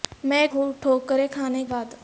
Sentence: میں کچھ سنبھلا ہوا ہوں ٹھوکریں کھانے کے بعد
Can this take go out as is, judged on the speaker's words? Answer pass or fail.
fail